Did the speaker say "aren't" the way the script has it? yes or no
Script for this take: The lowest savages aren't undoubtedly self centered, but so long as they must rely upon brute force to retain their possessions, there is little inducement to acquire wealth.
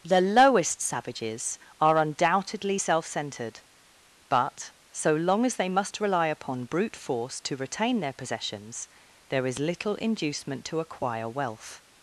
no